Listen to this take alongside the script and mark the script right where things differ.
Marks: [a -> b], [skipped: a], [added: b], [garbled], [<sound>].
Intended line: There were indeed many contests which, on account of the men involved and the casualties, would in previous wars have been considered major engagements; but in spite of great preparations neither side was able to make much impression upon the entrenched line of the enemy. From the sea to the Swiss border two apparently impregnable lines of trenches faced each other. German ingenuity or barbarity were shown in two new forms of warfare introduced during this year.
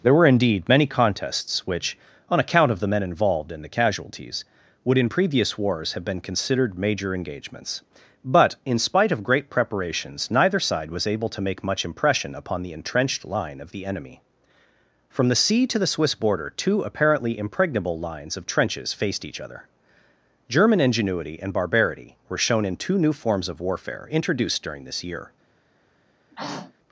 There were indeed many contests which, on account of the men involved and the casualties, would in previous wars have been considered major engagements; but in spite of great preparations neither side was able to make much impression upon the entrenched line of the enemy. From the sea to the Swiss border two apparently impregnable lines of trenches faced each other. German ingenuity [or -> and] barbarity were shown in two new forms of warfare introduced during this year. [throat clearing]